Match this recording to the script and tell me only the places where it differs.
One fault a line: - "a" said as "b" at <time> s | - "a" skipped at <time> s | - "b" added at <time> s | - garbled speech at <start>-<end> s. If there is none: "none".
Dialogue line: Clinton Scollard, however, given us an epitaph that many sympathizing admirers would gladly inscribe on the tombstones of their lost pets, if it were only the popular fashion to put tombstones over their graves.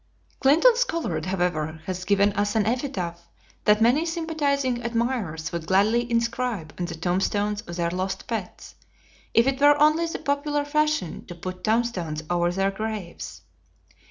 - "has" added at 1.9 s